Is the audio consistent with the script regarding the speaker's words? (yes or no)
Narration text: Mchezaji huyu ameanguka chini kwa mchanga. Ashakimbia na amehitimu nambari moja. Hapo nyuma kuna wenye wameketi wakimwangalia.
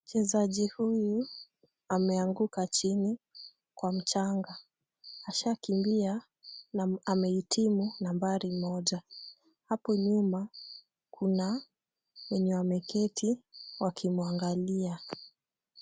yes